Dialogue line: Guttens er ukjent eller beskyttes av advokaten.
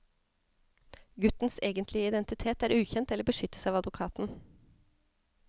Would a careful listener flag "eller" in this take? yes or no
no